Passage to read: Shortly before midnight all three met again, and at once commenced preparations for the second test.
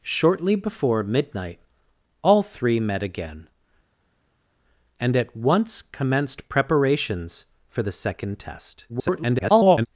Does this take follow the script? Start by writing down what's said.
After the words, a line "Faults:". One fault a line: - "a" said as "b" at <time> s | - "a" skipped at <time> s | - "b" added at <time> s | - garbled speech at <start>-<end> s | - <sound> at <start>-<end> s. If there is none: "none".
Shortly before midnight all three met again, and at once commenced preparations for the second test. [garbled]
Faults:
- garbled speech at 8.9-9.9 s